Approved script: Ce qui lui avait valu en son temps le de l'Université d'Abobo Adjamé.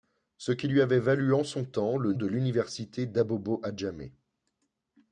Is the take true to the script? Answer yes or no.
yes